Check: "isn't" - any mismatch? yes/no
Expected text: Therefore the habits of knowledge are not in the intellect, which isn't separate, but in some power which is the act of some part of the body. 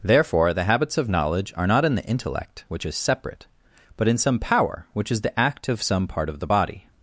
yes